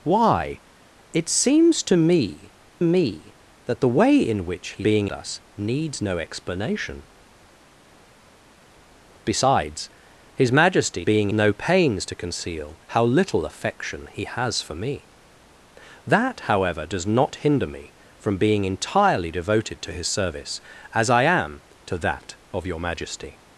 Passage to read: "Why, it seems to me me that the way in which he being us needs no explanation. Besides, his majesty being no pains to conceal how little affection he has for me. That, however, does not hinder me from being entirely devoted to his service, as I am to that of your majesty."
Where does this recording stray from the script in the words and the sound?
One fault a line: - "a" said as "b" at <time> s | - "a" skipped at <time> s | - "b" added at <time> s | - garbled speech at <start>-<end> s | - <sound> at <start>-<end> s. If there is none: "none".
none